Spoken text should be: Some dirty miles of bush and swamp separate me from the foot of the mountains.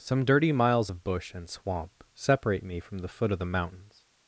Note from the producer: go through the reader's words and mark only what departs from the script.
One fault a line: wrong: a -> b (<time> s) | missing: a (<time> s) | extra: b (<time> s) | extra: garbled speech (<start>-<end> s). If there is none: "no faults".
no faults